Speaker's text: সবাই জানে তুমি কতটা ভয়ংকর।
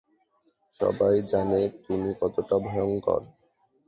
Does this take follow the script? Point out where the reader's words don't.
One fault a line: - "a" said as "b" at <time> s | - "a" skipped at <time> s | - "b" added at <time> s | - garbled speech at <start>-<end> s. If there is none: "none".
none